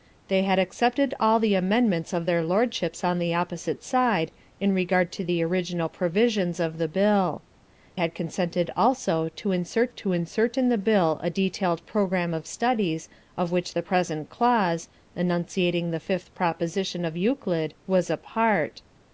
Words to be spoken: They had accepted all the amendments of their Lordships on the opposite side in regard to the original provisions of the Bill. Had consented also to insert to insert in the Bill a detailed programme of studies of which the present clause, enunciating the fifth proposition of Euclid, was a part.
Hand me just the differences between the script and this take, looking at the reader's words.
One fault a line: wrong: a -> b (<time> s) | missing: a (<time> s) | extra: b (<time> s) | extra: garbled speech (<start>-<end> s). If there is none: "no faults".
no faults